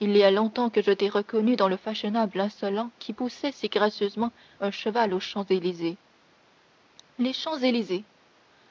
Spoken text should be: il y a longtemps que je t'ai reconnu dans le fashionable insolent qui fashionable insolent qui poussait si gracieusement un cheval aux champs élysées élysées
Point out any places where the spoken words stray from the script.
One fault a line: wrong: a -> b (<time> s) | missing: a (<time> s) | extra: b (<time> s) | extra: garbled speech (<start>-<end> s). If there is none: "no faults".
missing: fashionable insolent qui (3.1 s)
extra: les champs (7.2 s)